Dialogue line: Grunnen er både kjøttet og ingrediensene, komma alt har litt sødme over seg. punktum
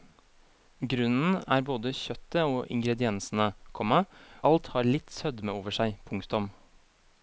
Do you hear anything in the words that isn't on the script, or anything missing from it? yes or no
no